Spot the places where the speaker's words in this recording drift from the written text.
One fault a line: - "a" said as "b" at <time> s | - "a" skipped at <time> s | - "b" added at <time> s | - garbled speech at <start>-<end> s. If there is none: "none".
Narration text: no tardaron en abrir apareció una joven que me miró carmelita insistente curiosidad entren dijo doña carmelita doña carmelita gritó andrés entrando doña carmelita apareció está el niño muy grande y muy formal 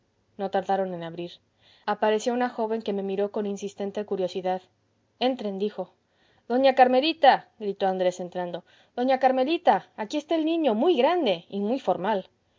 - "carmelita" said as "con" at 3.3 s
- "doña carmelita" skipped at 7.5 s
- "apareció" said as "aquí" at 10.0 s